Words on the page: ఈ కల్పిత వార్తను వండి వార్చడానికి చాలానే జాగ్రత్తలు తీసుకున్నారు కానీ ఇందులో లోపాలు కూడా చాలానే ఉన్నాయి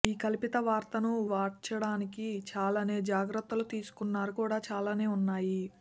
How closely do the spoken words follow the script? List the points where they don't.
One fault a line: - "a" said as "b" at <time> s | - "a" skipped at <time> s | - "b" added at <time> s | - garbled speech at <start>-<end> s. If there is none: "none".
- "వండి" skipped at 1.1 s
- "కానీ ఇందులో లోపాలు" skipped at 4.3 s